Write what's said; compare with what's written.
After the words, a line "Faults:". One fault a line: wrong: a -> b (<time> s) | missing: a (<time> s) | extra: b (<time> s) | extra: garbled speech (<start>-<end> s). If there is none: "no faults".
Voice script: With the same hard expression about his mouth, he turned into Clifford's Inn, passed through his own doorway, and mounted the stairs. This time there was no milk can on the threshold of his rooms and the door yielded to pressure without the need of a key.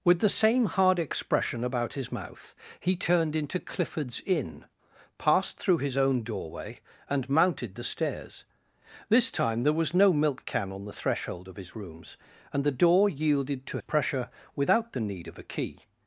With the same hard expression about his mouth, he turned into Clifford's Inn, passed through his own doorway, and mounted the stairs. This time there was no milk can on the threshold of his rooms and the door yielded to pressure without the need of a key.
Faults:
no faults